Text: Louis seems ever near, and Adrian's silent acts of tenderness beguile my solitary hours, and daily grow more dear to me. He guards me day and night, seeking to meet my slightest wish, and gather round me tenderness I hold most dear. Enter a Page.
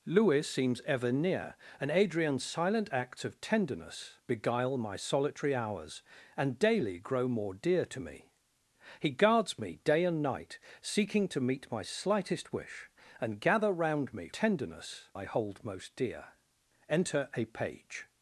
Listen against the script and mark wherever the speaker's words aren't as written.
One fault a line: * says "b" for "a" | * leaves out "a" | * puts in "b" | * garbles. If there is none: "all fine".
all fine